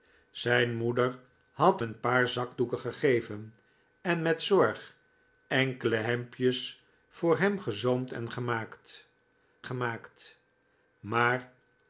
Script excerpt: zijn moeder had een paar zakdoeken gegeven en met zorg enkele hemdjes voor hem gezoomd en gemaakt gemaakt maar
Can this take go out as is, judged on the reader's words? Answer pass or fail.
pass